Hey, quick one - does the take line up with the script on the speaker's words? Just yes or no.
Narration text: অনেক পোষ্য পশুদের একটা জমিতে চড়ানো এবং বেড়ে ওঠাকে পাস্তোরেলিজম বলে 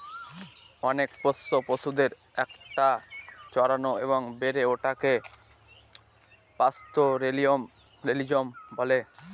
no